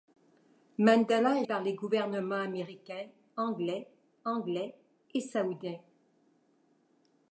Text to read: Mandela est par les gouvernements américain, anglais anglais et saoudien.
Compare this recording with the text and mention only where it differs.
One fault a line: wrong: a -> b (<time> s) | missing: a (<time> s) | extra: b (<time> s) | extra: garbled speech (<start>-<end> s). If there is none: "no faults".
no faults